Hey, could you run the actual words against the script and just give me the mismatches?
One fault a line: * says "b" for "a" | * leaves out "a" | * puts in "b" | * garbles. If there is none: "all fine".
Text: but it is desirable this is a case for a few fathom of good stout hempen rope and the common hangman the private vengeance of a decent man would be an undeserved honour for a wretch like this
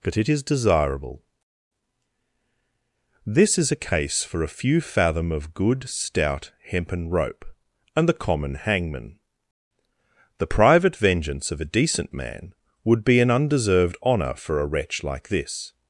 all fine